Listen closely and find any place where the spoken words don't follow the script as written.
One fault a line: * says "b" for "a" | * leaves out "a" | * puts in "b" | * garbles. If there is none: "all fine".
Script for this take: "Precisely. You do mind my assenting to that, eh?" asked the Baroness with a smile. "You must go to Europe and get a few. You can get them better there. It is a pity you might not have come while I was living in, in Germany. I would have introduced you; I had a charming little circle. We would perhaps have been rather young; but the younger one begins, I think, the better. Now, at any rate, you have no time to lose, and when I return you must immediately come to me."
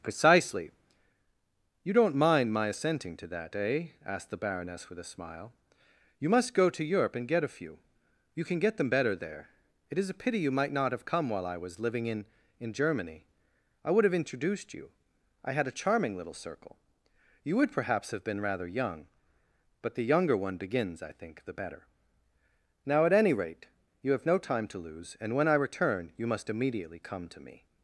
* says "don't" for "do"
* says "You" for "We"